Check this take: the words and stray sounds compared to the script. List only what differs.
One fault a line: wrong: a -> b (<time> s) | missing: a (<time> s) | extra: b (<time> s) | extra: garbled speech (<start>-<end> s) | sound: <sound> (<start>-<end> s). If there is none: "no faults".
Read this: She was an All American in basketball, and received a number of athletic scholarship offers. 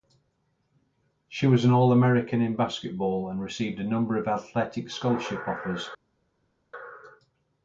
no faults